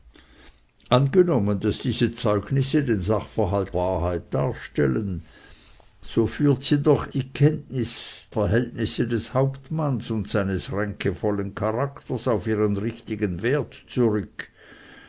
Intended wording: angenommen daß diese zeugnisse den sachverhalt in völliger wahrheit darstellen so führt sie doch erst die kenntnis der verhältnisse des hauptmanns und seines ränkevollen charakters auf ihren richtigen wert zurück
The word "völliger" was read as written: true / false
false